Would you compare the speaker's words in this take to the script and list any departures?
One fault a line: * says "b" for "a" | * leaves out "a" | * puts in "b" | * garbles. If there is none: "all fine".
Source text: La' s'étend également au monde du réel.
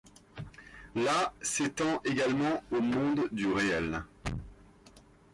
all fine